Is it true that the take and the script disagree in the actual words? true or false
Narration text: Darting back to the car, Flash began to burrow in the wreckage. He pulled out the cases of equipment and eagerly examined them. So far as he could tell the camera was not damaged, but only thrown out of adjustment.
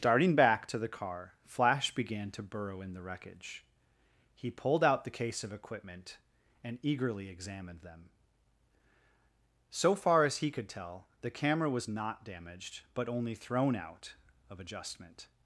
true